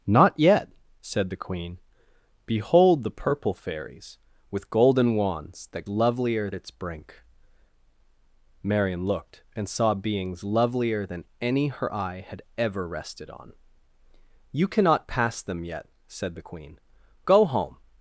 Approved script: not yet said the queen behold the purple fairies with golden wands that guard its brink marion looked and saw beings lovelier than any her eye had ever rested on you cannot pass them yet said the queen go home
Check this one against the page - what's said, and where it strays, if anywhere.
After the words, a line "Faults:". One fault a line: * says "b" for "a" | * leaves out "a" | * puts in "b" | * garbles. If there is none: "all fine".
not yet said the queen behold the purple fairies with golden wands that lovelier its brink marion looked and saw beings lovelier than any her eye had ever rested on you cannot pass them yet said the queen go home
Faults:
* says "lovelier" for "guard"